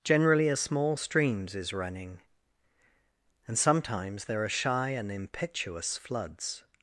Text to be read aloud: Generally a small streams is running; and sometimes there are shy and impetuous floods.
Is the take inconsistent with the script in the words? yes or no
no